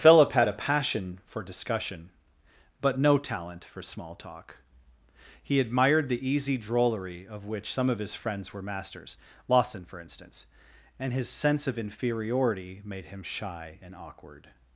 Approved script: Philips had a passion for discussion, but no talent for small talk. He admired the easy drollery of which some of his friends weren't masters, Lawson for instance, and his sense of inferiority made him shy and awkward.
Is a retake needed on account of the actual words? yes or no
yes